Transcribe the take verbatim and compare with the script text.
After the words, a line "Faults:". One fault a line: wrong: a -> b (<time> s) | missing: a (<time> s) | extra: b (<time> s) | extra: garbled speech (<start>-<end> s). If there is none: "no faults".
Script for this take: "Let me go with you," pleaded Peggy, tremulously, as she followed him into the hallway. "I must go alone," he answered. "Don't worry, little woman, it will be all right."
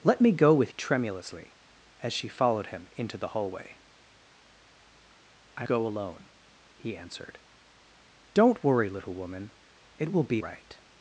"Let me go with tremulously, as she followed him into the hallway. "I go alone," he answered. "Don't worry, little woman, it will be right."
Faults:
missing: you pleaded Peggy (0.7 s)
missing: must (5.7 s)
missing: all (10.4 s)